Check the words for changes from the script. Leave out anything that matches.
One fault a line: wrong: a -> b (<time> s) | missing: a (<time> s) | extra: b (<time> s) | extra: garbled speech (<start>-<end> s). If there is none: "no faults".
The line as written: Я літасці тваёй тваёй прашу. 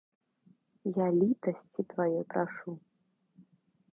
missing: тваёй (2.2 s)